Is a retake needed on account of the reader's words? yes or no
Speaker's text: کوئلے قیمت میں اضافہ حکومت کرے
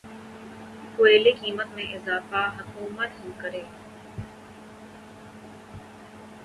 no